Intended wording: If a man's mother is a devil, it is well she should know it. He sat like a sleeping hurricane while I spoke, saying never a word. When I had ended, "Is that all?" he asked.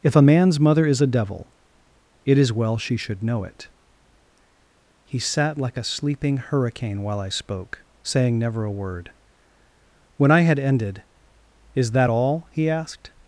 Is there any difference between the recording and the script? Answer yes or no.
no